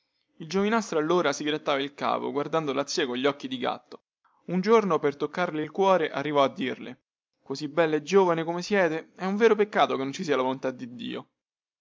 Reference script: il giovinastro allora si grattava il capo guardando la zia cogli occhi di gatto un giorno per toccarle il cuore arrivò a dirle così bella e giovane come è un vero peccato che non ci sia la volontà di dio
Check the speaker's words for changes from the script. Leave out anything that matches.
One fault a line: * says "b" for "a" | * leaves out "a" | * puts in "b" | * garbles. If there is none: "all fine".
* puts in "siete"